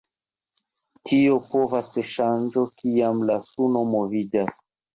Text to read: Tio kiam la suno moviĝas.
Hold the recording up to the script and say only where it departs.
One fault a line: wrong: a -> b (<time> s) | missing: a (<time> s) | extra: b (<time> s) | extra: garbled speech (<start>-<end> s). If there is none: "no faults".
extra: povas ŝanĝo (1.5 s)